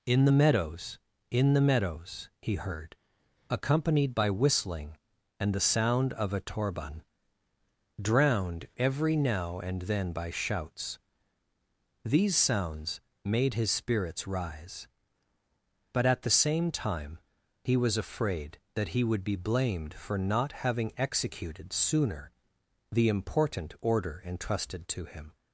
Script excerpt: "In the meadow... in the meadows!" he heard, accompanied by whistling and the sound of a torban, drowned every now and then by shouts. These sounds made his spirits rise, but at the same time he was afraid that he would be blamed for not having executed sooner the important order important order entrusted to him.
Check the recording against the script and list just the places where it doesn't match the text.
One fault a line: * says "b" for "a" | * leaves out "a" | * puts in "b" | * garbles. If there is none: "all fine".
* says "meadows" for "meadow"
* leaves out "important order"